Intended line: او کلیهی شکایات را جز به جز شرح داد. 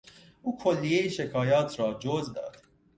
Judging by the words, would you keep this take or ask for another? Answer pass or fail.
fail